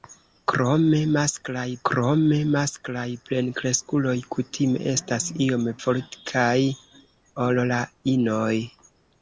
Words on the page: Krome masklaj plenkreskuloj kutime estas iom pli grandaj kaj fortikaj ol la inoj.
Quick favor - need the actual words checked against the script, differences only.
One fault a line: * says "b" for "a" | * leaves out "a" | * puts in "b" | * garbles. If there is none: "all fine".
* puts in "krome masklaj"
* leaves out "pli grandaj kaj"